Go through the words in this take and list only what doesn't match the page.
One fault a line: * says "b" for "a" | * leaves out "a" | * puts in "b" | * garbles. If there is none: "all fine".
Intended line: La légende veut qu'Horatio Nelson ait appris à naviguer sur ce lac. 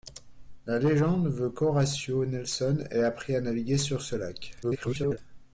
* garbles